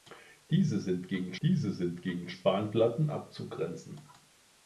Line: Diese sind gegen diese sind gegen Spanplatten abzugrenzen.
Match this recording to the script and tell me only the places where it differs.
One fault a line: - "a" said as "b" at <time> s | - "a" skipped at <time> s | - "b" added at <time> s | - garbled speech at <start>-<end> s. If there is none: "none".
none